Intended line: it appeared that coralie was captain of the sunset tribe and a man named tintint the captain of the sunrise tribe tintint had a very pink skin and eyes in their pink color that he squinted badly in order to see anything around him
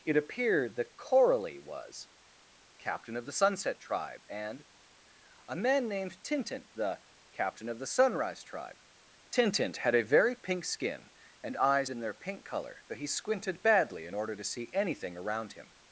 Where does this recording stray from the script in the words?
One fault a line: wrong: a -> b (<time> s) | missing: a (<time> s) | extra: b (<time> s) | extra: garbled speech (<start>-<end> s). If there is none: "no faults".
no faults